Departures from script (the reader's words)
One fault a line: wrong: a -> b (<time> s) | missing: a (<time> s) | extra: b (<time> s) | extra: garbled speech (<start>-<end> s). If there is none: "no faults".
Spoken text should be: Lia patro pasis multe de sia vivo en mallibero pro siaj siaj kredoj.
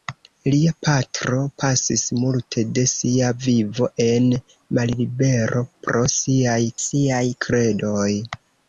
no faults